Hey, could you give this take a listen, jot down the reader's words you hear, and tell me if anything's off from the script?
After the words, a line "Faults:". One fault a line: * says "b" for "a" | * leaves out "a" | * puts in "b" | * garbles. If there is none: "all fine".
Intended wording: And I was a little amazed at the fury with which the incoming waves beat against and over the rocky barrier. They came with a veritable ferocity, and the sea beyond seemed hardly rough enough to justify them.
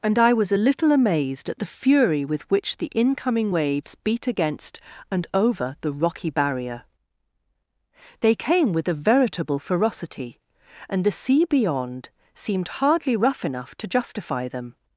And I was a little amazed at the fury with which the incoming waves beat against and over the rocky barrier. They came with a veritable ferocity, and the sea beyond seemed hardly rough enough to justify them.
Faults:
all fine